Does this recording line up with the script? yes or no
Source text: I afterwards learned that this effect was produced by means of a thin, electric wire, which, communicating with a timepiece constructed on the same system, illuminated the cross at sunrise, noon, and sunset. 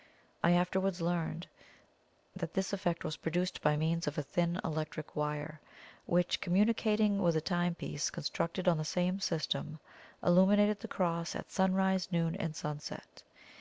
yes